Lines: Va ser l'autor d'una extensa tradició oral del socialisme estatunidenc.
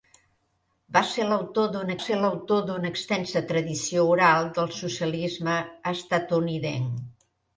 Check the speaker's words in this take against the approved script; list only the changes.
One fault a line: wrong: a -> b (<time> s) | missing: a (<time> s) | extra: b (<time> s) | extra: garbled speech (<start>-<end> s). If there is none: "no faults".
extra: ser l'autor d'una (2.0 s)